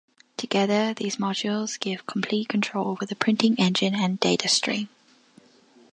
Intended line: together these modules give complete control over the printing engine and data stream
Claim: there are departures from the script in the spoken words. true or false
false